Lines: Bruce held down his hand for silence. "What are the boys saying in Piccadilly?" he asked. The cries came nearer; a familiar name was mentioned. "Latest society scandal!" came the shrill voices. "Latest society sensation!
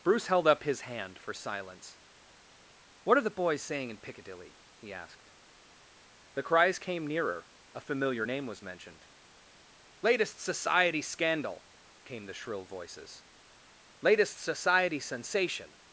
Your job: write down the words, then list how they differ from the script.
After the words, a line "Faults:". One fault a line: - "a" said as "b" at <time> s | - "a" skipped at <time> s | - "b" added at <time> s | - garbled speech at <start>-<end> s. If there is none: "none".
Bruce held up his hand for silence. "What are the boys saying in Piccadilly?" he asked. The cries came nearer; a familiar name was mentioned. "Latest society scandal!" came the shrill voices. "Latest society sensation!
Faults:
- "down" said as "up" at 0.5 s